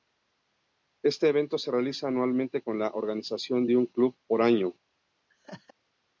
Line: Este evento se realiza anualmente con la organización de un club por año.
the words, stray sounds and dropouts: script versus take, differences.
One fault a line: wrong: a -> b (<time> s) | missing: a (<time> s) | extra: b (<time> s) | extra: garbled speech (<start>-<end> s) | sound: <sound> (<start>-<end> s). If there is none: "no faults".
sound: laugh (5.3-5.7 s)